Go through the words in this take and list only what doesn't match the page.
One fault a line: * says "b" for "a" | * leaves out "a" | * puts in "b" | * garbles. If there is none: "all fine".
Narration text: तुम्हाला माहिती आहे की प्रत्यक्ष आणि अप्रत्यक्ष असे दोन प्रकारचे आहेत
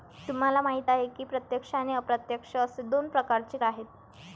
all fine